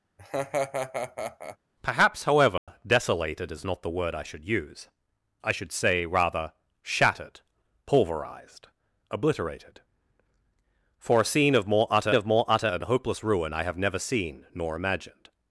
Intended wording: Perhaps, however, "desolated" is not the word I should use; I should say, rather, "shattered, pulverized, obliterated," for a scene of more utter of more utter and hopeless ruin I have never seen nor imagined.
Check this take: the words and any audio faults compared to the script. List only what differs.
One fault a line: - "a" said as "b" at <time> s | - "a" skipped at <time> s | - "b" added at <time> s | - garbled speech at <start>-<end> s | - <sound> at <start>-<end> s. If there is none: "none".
- laugh at 0.2-1.6 s
- dropout at 2.6-2.7 s